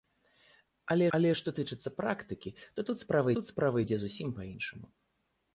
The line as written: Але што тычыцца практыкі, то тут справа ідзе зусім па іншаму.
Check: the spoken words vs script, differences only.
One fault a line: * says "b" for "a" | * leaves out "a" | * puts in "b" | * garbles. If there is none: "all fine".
* puts in "але"
* puts in "тут справа"